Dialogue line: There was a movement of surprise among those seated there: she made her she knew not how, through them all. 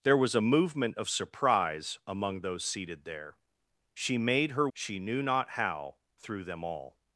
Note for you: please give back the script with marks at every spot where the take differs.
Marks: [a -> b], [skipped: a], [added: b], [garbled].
There was a movement of surprise among those seated there: she made her she knew not how, through them all.